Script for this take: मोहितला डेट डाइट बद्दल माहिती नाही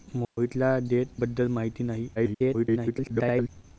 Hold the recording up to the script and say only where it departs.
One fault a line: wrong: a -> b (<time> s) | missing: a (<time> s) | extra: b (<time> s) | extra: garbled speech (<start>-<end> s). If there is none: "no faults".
missing: डाइट (1.1 s)
extra: garbled speech (2.2-3.5 s)